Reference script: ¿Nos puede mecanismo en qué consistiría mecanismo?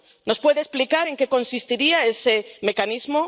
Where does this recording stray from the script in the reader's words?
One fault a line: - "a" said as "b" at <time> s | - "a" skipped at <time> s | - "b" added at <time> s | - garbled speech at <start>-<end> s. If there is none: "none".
- "mecanismo" said as "explicar" at 0.6 s
- "ese" added at 2.1 s